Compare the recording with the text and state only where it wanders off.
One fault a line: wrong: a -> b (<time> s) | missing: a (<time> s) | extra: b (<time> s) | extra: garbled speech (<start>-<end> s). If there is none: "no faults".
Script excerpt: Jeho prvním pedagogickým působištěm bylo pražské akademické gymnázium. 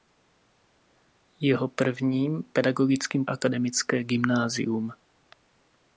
missing: působištěm bylo pražské (3.2 s)